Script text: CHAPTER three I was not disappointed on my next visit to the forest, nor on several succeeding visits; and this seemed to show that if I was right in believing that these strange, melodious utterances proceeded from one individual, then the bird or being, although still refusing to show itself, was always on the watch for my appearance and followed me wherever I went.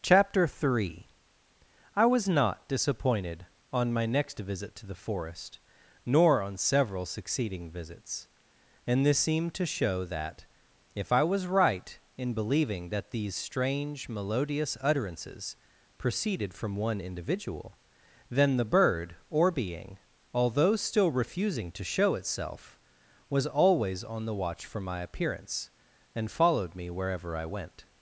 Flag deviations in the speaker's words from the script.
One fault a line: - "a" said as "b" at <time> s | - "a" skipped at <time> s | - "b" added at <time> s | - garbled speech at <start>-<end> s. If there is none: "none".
none